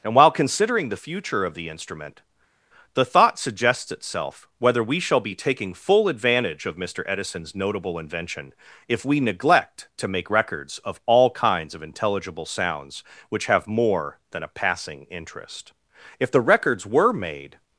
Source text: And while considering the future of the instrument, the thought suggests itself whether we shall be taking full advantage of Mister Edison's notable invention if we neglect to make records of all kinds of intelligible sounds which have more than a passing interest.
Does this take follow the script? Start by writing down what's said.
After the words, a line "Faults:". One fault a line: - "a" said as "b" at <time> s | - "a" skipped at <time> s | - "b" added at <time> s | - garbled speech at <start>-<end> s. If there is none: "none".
And while considering the future of the instrument, the thought suggests itself whether we shall be taking full advantage of Mister Edison's notable invention if we neglect to make records of all kinds of intelligible sounds which have more than a passing interest. If the records were made
Faults:
- "If the records were made" added at 16.2 s